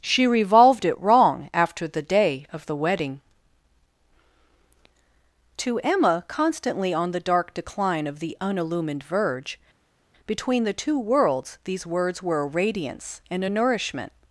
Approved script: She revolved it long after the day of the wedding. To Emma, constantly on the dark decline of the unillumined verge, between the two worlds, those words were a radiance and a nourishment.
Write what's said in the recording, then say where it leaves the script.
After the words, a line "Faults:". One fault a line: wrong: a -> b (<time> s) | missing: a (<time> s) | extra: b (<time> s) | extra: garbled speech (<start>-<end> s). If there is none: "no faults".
She revolved it wrong after the day of the wedding. To Emma, constantly on the dark decline of the unillumined verge, between the two worlds, these words were a radiance and a nourishment.
Faults:
wrong: long -> wrong (1.0 s)
wrong: those -> these (11.6 s)